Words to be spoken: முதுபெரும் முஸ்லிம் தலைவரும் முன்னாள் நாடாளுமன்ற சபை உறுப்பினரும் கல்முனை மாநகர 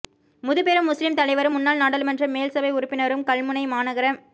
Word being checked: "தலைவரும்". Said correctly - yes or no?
yes